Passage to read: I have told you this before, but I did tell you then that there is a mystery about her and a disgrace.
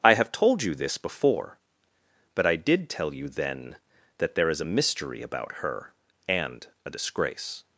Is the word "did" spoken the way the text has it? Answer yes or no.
yes